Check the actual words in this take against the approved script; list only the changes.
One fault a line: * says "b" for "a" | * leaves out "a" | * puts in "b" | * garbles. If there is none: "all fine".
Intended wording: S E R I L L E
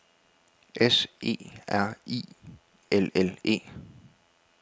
all fine